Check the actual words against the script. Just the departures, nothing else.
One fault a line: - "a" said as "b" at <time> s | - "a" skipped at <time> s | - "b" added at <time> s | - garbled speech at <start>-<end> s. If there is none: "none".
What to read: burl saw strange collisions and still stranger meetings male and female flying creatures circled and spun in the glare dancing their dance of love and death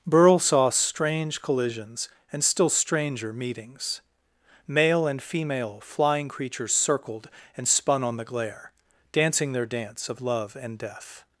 - "in" said as "on" at 8.0 s